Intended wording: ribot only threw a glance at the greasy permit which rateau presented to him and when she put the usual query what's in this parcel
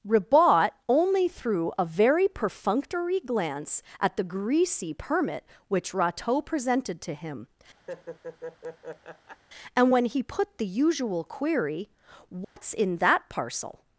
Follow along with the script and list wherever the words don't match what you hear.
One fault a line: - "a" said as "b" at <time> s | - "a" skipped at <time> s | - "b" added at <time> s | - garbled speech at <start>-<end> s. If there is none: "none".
- "very perfunctory" added at 1.9 s
- "she" said as "he" at 10.1 s
- "this" said as "that" at 13.0 s